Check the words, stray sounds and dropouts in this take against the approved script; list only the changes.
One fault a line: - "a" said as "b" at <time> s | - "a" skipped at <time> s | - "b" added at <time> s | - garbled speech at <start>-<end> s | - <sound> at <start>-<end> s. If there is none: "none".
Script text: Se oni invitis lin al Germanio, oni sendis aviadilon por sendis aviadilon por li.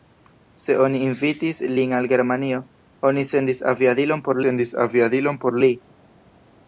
none